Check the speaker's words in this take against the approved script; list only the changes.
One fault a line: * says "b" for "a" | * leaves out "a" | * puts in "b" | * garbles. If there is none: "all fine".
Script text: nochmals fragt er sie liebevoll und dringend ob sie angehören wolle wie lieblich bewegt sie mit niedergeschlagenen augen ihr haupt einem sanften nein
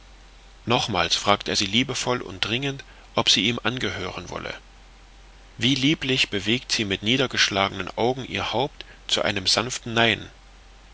* puts in "ihm"
* puts in "zu"